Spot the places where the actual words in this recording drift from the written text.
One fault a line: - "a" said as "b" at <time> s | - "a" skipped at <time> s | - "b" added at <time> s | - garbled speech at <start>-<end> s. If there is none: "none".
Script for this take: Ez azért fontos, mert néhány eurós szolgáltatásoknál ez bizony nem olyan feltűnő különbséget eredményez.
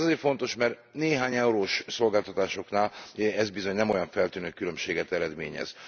none